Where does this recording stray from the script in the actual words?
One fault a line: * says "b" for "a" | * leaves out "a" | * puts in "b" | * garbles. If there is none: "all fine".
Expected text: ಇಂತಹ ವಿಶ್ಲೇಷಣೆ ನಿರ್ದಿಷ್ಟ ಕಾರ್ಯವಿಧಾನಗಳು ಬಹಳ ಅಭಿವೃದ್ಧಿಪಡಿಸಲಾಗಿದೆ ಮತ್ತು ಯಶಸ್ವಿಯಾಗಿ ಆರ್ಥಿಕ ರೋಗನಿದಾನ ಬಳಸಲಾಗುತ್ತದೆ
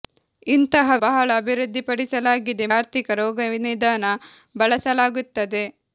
* leaves out "ವಿಶ್ಲೇಷಣೆ ನಿರ್ದಿಷ್ಟ ಕಾರ್ಯವಿಧಾನಗಳು"
* leaves out "ಮತ್ತು ಯಶಸ್ವಿಯಾಗಿ"